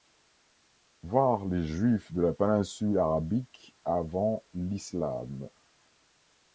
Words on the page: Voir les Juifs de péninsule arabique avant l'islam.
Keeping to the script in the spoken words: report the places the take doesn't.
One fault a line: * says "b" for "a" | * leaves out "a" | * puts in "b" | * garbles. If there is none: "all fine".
* puts in "la"